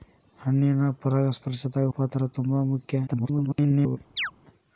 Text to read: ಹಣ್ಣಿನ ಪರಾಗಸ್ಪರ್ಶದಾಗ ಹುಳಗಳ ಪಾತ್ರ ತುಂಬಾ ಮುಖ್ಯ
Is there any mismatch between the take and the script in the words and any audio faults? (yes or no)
yes